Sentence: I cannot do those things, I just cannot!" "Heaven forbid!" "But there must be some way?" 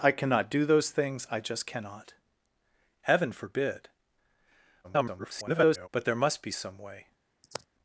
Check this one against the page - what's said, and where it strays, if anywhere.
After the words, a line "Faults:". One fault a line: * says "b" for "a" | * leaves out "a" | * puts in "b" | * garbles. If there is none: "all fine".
I cannot do those things, I just cannot!" "Heaven forbid!" [garbled] "But there must be some way?"
Faults:
* garbles